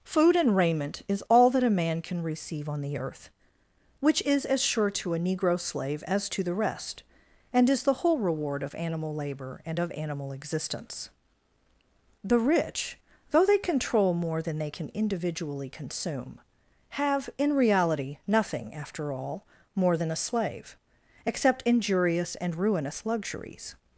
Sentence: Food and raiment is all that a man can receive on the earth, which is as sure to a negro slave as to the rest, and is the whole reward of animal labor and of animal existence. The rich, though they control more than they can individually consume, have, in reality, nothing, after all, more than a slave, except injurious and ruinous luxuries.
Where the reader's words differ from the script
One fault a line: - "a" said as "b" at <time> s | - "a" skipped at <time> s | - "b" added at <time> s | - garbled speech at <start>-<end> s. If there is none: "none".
none